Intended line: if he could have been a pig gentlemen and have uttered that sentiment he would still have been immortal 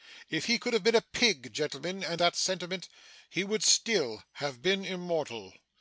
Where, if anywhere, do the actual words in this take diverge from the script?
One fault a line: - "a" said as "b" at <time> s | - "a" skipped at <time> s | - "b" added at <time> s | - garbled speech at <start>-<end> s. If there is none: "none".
- "have uttered" skipped at 2.2 s